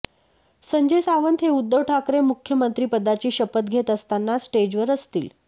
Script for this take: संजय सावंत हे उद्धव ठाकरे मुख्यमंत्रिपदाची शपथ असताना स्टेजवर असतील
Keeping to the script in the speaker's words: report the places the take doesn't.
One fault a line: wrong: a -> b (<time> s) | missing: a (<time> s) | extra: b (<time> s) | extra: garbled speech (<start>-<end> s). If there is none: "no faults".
extra: घेत (3.7 s)